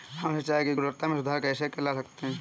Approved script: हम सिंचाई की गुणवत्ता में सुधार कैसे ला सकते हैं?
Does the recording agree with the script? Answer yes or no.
yes